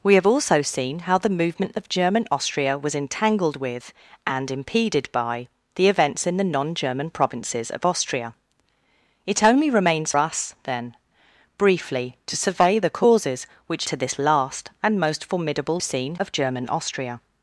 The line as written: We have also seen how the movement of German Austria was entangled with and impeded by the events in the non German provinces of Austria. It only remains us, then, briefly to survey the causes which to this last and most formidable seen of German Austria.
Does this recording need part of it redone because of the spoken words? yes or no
no